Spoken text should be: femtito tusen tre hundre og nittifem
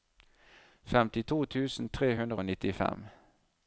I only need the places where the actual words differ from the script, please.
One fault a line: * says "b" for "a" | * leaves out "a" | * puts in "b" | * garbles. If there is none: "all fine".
all fine